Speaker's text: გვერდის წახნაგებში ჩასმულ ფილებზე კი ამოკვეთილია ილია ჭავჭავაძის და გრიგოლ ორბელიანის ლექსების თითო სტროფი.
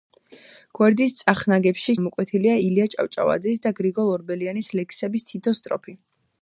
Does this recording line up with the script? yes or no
no